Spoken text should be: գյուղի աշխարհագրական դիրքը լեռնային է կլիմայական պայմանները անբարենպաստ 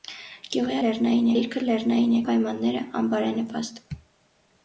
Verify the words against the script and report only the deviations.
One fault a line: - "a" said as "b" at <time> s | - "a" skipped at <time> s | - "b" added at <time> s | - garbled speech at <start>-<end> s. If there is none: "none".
- "աշխարհագրական" said as "լեռնային" at 0.8 s
- "կլիմայական" skipped at 2.2 s